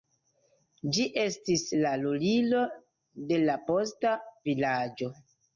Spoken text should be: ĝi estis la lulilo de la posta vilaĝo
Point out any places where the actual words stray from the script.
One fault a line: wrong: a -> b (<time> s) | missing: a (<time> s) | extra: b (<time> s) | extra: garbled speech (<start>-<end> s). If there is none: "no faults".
no faults